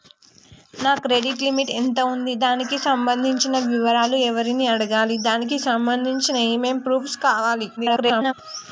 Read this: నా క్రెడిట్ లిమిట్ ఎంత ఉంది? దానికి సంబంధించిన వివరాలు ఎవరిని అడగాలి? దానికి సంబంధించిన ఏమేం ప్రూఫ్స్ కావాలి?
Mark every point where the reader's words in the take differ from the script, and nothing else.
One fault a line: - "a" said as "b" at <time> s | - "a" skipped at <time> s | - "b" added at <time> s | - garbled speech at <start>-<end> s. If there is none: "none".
- garbled speech at 7.8-8.3 s